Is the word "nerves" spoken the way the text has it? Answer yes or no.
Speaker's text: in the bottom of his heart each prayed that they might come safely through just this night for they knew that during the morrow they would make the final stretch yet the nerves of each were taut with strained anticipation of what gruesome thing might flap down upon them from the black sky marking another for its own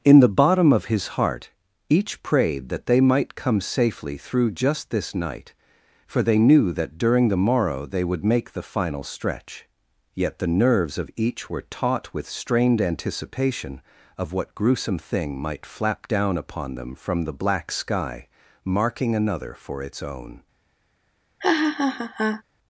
yes